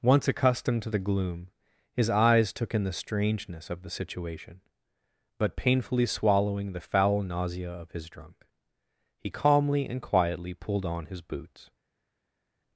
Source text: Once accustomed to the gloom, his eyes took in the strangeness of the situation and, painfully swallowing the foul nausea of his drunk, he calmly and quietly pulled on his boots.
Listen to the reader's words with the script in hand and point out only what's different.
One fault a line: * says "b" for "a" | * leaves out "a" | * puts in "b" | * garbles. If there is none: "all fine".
* says "but" for "and"